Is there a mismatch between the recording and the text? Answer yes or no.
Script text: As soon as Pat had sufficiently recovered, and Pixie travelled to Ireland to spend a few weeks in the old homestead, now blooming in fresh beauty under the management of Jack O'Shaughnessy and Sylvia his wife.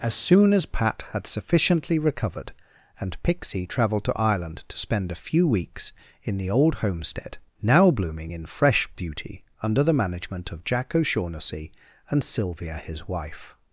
no